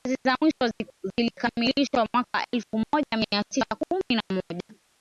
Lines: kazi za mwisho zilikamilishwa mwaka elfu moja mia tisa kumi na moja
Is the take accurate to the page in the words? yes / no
yes